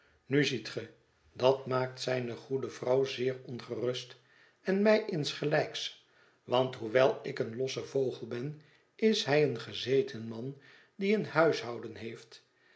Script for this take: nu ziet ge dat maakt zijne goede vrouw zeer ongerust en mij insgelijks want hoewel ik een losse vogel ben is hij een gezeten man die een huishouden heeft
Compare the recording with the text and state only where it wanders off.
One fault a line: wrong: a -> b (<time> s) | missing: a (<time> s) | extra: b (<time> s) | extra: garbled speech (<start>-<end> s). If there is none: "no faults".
no faults